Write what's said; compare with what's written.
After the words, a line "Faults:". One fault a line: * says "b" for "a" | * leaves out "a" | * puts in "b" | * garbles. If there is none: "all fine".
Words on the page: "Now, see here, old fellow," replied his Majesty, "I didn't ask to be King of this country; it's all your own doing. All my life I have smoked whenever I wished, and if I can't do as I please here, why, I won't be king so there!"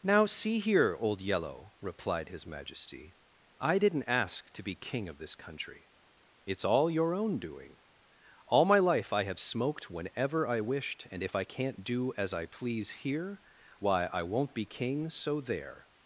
"Now, see here, old yellow," replied his Majesty, "I didn't ask to be King of this country; it's all your own doing. All my life I have smoked whenever I wished, and if I can't do as I please here, why, I won't be king so there!"
Faults:
* says "yellow" for "fellow"